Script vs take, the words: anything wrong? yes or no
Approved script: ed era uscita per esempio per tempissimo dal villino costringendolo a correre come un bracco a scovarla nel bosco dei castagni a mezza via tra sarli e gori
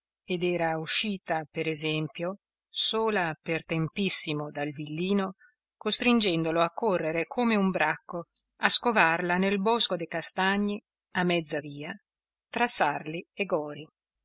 yes